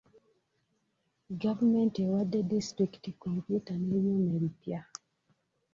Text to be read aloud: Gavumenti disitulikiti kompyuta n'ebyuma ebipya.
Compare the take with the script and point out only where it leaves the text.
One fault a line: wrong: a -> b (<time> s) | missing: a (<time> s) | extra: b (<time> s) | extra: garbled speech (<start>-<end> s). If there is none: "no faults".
extra: ewadde (2.0 s)